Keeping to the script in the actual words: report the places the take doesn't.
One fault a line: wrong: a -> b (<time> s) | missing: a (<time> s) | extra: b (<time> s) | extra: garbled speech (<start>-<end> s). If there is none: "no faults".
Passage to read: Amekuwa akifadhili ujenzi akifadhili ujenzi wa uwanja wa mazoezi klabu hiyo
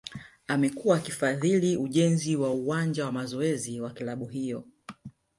missing: akifadhili ujenzi (2.4 s)
extra: wa (3.8 s)